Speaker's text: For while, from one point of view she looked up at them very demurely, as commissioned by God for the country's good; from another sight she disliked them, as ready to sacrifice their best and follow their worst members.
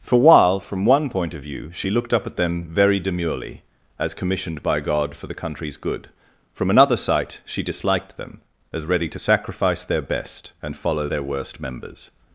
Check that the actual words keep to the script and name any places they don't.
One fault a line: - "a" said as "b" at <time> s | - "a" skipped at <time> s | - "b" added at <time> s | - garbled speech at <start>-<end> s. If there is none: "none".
none